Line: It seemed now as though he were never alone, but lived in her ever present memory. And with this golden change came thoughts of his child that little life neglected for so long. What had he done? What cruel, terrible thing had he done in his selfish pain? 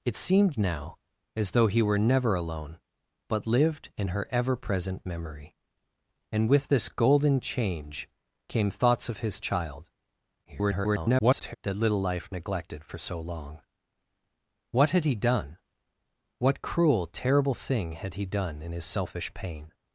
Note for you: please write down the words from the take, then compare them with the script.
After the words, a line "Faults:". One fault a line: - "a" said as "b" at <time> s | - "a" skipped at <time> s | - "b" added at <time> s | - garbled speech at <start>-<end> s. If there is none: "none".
It seemed now as though he were never alone, but lived in her ever present memory. And with this golden change came thoughts of his child [garbled] that little life neglected for so long. What had he done? What cruel, terrible thing had he done in his selfish pain?
Faults:
- garbled speech at 10.4-11.6 s